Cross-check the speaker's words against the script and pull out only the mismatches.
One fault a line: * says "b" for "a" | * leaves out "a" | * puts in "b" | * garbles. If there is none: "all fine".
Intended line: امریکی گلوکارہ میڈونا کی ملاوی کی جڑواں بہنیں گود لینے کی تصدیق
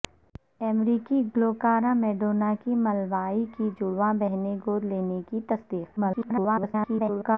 * garbles